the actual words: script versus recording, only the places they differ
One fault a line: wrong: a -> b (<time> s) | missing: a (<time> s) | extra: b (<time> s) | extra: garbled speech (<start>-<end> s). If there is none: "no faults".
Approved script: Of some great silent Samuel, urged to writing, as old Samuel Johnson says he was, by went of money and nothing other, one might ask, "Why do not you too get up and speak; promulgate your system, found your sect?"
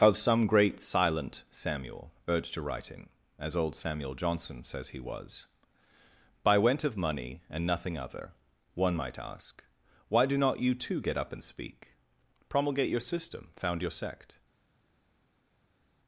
no faults